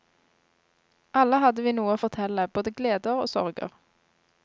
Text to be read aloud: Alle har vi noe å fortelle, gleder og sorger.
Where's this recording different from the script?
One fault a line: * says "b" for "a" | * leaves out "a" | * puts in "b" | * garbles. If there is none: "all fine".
* says "hadde" for "har"
* puts in "både"